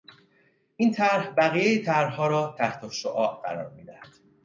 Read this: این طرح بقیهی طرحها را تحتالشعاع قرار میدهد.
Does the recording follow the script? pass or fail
pass